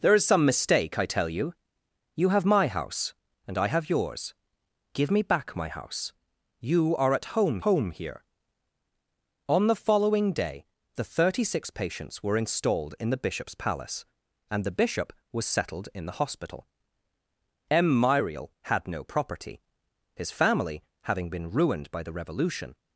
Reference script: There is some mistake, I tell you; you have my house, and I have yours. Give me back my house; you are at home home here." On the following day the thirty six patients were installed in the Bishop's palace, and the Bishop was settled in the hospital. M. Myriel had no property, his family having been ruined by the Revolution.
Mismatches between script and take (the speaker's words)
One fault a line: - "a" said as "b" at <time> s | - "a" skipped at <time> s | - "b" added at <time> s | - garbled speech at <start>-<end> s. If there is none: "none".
none